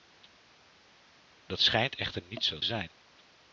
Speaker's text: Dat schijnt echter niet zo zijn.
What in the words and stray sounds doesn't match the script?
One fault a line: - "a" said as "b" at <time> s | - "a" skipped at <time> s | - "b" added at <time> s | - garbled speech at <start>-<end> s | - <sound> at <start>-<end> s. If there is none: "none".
none